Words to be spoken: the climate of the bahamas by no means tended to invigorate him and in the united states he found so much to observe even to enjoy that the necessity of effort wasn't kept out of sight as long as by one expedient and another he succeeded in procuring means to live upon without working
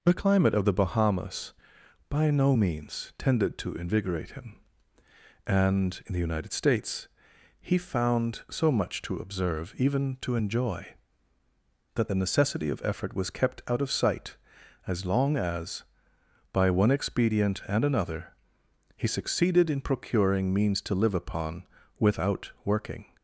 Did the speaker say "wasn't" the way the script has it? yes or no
no